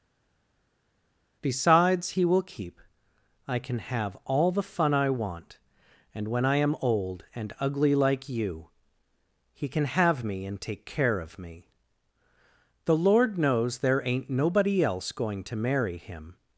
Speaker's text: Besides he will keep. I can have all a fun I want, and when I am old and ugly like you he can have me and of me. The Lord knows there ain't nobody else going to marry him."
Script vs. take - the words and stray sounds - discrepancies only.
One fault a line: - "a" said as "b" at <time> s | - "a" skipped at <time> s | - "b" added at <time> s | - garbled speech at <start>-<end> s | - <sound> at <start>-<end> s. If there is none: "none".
- "a" said as "the" at 4.5 s
- "take care" added at 10.6 s